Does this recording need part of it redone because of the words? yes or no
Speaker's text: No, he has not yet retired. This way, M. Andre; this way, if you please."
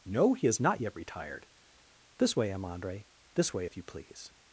no